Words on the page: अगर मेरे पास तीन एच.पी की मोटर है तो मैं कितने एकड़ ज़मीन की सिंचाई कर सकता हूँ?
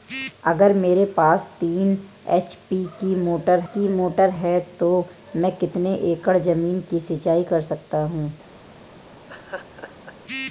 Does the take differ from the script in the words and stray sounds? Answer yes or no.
yes